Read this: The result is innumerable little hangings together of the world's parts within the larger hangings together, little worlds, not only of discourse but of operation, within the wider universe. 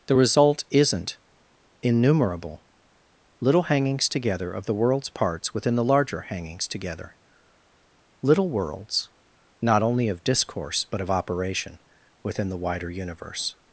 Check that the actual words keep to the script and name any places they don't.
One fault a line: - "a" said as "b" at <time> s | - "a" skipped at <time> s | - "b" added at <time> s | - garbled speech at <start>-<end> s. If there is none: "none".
- "is" said as "isn't" at 0.7 s